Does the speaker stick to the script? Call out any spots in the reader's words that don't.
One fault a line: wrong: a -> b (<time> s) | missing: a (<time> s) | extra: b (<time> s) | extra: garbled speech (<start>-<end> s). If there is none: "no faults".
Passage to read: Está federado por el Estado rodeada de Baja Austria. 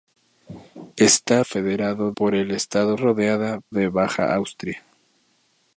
no faults